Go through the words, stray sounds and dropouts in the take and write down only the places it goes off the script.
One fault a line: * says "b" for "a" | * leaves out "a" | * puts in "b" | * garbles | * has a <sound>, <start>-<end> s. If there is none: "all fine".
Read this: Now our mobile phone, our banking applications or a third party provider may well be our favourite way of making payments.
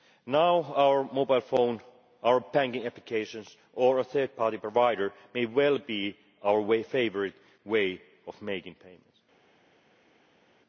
all fine